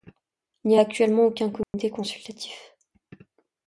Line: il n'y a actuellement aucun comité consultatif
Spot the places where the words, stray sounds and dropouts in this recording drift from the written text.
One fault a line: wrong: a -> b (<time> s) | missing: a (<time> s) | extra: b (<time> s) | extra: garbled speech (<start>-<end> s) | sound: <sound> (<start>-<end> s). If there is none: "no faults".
sound: dropout (1.6-1.7 s)